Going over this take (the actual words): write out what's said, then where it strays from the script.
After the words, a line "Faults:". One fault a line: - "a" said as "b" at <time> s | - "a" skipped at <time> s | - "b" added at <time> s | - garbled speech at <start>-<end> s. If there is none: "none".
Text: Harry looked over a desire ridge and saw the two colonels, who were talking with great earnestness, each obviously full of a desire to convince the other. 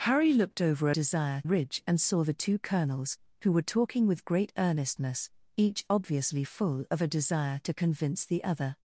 Harry looked over a desire ridge and saw the two colonels, who were talking with great earnestness, each obviously full of a desire to convince the other.
Faults:
none